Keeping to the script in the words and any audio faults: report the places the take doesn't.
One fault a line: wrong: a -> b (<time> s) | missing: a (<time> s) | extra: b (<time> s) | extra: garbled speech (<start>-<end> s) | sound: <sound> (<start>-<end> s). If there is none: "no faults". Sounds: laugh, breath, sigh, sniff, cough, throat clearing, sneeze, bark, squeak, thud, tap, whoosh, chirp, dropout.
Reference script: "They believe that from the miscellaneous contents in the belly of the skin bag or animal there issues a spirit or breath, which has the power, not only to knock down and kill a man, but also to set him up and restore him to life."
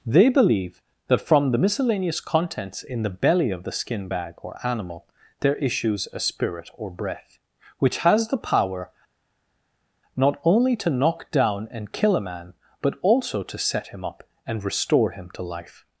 no faults